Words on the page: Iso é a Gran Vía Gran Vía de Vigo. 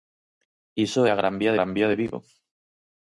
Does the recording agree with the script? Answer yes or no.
yes